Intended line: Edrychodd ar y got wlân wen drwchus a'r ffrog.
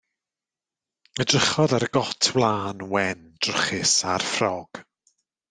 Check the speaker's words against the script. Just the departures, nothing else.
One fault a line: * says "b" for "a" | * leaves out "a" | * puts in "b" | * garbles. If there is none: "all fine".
all fine